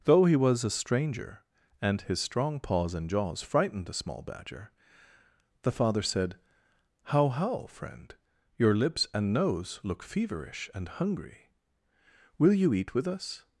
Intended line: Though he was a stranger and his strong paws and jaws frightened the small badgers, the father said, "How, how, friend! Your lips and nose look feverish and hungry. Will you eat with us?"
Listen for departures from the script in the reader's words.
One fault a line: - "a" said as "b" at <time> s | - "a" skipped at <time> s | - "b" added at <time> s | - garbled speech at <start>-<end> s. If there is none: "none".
- "badgers" said as "badger" at 4.2 s